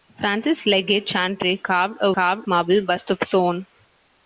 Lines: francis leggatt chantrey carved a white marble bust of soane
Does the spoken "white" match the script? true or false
false